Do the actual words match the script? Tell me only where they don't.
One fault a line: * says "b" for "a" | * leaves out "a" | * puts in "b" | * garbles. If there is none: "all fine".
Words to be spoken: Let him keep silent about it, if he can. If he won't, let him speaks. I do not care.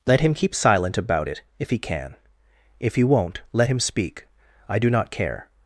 * says "speak" for "speaks"